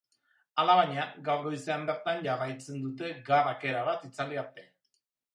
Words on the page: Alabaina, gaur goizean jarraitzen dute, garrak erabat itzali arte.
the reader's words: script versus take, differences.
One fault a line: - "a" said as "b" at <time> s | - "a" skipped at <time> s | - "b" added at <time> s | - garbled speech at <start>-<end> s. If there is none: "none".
- "bertan" added at 1.9 s